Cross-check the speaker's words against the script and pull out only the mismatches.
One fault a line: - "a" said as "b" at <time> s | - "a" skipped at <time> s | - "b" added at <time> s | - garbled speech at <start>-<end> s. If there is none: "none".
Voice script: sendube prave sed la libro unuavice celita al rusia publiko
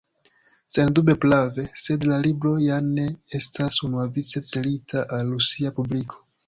- "ja ne estas" added at 2.6 s